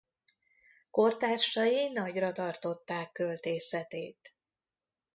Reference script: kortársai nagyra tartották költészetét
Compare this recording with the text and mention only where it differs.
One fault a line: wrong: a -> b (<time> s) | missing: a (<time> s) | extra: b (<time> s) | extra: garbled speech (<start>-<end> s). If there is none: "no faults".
no faults